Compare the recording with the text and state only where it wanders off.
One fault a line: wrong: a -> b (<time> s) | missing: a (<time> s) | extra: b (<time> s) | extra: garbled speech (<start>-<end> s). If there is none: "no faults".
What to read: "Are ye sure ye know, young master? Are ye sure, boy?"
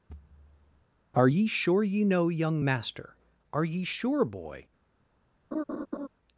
no faults